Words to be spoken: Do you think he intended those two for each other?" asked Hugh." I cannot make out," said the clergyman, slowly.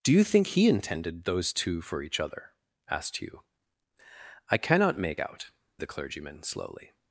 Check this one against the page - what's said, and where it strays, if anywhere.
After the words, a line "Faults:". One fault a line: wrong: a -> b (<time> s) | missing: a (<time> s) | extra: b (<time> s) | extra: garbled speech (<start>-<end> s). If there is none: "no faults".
Do you think he intended those two for each other?" asked Hugh." I cannot make out," the clergyman, slowly.
Faults:
missing: said (5.5 s)